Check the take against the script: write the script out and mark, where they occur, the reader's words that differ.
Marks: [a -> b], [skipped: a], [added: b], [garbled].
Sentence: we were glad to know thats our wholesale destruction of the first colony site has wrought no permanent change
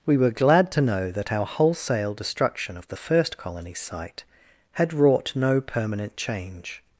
we were glad to know [thats -> that] our wholesale destruction of the first colony site [has -> had] wrought no permanent change